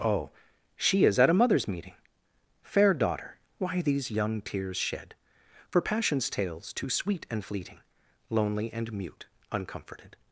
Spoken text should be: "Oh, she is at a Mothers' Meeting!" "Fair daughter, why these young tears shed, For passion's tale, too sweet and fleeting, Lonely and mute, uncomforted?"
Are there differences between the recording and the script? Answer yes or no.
yes